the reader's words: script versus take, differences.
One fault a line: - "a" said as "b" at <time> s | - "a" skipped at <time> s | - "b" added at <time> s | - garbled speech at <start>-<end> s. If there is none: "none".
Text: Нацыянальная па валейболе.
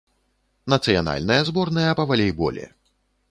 - "зборная" added at 1.5 s